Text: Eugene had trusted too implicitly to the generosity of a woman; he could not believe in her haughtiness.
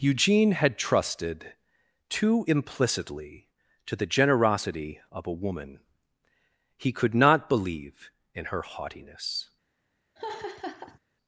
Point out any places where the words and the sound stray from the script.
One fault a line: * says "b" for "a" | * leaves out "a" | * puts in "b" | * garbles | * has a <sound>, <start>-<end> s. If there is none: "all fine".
* has a laugh, 10.2-11.0 s